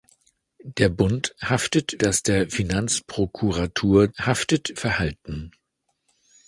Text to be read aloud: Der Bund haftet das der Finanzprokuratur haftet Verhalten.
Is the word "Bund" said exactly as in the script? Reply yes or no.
yes